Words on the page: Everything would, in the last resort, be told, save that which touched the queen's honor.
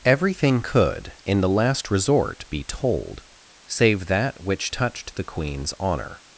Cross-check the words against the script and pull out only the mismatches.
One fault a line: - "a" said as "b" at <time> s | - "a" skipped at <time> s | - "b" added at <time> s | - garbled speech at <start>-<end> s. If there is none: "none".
- "would" said as "could" at 0.6 s